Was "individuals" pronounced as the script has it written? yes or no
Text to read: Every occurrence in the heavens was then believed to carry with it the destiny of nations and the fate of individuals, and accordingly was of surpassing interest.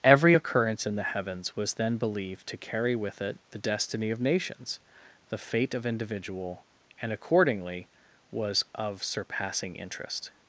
no